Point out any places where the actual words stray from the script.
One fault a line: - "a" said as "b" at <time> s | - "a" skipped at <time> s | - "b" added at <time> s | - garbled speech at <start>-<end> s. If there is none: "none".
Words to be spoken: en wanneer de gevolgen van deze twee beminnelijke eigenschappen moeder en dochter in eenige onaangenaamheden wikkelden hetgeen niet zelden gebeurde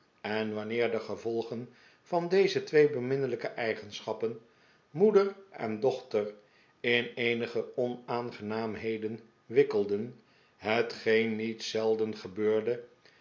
none